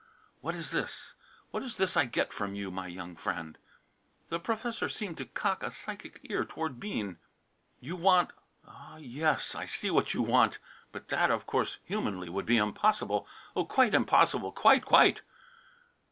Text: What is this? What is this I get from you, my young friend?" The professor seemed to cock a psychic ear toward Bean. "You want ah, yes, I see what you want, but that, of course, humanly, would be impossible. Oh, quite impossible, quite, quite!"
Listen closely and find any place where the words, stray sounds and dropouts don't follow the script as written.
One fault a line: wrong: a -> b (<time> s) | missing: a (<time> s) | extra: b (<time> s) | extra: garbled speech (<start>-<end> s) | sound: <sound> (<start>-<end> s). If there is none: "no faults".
no faults